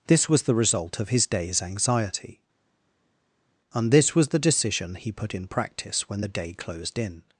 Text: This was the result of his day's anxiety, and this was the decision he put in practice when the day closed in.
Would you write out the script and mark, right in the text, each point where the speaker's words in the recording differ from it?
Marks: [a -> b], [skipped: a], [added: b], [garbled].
This was the result of his day's anxiety, and this was the decision he put in practice when the day closed in.